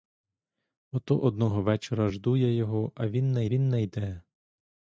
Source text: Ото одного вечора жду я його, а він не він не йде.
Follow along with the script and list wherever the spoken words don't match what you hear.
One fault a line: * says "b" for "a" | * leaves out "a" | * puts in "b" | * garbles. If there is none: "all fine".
all fine